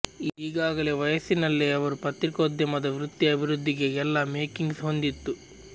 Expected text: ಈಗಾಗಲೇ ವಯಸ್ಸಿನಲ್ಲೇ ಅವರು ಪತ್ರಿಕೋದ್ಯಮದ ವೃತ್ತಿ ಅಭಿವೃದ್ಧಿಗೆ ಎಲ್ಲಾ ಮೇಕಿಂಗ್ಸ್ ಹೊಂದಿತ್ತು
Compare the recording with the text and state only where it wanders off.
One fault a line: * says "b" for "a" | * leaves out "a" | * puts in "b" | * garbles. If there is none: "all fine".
all fine